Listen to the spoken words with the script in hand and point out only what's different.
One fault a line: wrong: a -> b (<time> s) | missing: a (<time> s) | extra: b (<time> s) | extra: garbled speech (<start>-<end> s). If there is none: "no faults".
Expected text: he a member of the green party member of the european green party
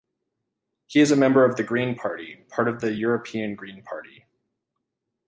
extra: is (1.0 s)
wrong: member -> part (2.5 s)